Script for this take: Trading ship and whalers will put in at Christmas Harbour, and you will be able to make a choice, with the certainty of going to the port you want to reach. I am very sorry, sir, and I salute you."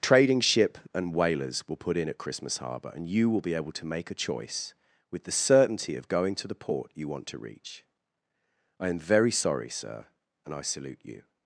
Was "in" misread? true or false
false